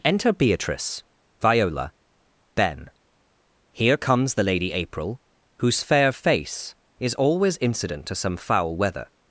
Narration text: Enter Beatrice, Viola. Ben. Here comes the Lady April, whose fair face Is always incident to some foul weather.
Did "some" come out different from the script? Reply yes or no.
no